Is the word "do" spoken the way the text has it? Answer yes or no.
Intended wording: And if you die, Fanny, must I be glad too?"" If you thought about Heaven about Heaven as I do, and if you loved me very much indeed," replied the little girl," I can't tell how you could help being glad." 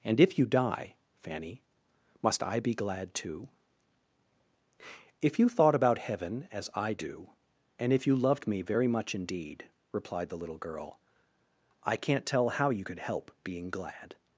yes